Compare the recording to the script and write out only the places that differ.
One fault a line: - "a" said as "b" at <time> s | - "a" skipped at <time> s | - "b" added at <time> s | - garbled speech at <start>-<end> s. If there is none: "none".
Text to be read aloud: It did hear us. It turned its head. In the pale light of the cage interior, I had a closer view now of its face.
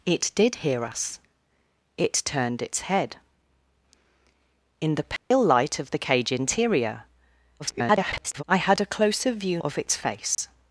- garbled speech at 7.6-8.4 s
- "now" skipped at 9.6 s